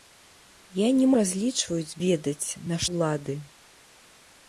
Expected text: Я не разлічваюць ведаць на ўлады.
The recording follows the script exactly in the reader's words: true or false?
true